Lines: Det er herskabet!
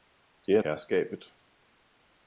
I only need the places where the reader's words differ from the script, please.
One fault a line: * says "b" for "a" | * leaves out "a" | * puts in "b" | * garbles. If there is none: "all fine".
all fine